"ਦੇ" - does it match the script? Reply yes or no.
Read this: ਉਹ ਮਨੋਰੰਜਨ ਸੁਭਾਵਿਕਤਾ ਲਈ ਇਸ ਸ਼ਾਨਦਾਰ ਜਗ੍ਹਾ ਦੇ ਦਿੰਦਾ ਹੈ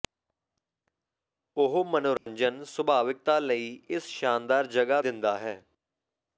no